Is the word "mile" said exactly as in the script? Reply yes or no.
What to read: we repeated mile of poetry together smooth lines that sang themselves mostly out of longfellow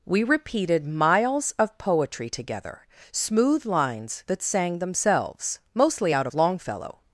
no